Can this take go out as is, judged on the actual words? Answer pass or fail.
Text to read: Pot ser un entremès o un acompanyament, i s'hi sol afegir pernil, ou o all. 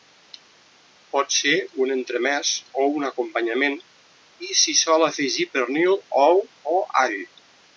pass